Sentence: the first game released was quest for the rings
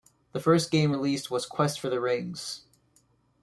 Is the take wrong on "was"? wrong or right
right